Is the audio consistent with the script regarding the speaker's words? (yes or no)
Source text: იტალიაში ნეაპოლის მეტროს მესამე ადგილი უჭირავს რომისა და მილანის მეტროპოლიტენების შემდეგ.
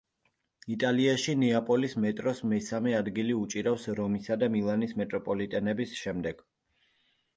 yes